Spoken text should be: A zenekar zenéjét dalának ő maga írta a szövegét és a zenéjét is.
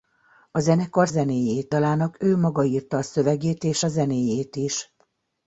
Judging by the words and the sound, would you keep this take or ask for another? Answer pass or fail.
pass